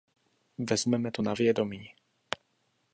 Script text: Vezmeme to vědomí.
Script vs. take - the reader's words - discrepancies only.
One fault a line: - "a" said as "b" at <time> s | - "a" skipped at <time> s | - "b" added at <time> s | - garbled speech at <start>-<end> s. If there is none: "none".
- "na" added at 1.2 s